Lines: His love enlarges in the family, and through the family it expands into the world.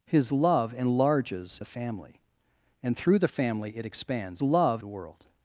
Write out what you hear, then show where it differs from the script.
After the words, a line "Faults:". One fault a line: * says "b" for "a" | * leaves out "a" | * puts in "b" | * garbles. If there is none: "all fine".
His love enlarges the family, and through the family it expands love the world.
Faults:
* leaves out "in"
* says "love" for "into"